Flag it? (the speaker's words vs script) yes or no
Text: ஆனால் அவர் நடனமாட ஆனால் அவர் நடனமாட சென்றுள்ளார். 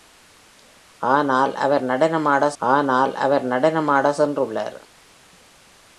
no